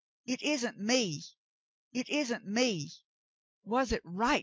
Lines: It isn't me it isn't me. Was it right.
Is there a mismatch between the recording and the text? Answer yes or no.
no